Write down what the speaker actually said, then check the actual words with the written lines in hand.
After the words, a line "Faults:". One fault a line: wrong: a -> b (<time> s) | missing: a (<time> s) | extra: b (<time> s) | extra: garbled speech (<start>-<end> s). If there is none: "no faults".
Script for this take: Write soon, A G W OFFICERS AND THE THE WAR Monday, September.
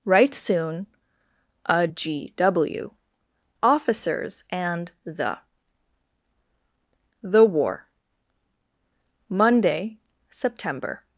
Write soon, A G W OFFICERS AND THE THE WAR Monday, September.
Faults:
no faults